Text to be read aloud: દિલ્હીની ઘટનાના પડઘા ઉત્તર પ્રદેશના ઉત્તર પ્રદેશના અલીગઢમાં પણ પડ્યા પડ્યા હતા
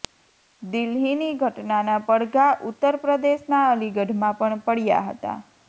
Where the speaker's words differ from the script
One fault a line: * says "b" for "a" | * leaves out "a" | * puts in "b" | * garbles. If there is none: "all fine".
* leaves out "ઉત્તર પ્રદેશના"
* leaves out "પડ્યા"